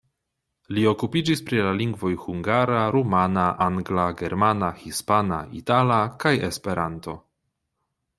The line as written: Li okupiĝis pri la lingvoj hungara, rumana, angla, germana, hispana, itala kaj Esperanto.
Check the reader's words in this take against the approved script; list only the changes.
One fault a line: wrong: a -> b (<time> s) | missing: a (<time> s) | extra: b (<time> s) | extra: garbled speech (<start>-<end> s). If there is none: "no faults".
no faults